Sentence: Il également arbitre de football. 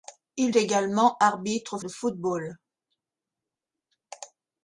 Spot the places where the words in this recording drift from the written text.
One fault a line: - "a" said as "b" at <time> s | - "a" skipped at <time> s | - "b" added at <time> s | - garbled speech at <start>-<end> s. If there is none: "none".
none